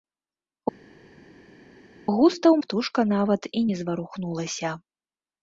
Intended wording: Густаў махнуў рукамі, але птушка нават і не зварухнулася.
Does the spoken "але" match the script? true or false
false